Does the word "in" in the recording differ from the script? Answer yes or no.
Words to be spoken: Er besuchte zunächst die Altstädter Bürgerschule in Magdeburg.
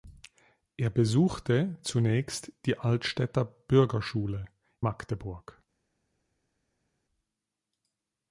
yes